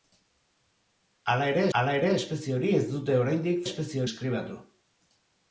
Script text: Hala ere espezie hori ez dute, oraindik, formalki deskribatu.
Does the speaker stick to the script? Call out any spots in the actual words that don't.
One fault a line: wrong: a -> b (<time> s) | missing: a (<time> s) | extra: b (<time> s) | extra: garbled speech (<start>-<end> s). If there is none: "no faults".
extra: hala ere (1.8 s)
wrong: formalki -> espezie (3.7 s)